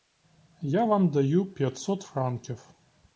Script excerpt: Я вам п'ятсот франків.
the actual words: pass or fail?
fail